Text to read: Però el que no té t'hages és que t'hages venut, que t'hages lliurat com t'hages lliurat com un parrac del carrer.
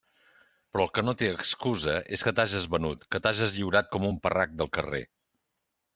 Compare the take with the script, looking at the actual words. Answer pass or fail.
fail